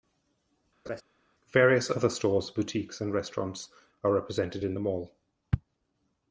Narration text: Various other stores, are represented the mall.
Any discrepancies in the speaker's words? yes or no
yes